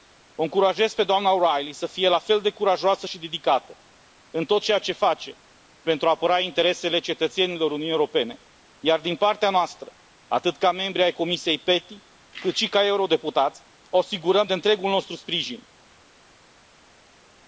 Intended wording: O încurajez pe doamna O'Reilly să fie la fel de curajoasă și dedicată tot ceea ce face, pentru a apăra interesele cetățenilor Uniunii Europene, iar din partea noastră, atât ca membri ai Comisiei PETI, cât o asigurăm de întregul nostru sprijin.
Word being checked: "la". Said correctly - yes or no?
yes